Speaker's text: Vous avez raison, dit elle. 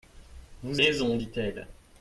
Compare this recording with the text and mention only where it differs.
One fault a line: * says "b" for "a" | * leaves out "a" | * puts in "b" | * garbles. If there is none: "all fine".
* leaves out "avez"